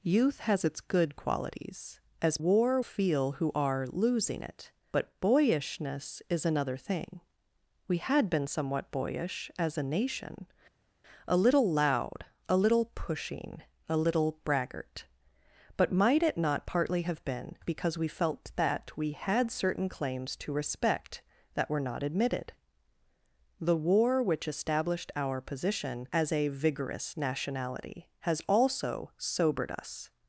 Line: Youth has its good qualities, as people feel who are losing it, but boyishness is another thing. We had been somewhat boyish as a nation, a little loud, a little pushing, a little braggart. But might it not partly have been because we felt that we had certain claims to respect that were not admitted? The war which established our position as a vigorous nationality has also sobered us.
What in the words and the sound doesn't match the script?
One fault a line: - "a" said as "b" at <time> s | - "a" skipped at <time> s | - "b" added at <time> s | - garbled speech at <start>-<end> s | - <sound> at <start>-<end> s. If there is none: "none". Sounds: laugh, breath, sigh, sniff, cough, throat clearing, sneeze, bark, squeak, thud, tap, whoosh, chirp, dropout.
- "people" said as "war" at 2.4 s